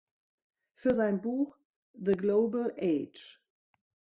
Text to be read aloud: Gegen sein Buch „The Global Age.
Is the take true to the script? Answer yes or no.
no